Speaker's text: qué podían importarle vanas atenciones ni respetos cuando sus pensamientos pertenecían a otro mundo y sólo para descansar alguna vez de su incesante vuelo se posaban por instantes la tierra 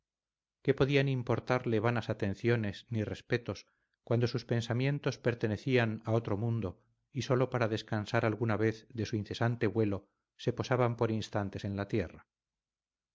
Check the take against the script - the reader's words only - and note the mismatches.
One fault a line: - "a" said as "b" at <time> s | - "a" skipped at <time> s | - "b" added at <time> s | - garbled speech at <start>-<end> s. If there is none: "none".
- "en" added at 11.6 s